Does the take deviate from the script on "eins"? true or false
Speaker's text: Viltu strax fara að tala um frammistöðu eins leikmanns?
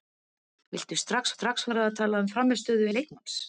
true